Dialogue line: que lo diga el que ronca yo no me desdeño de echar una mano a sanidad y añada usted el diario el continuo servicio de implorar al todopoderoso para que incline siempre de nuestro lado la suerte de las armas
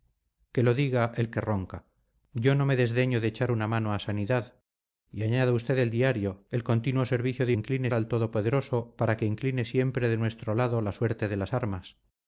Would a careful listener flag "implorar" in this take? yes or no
yes